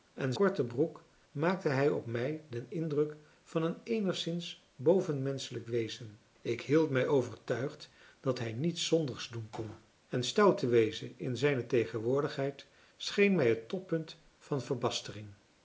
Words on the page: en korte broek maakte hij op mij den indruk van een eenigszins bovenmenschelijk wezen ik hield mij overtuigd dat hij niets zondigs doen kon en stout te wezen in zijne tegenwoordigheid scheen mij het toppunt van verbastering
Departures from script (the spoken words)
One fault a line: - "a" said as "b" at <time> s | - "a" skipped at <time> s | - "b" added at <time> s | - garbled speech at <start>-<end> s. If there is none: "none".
none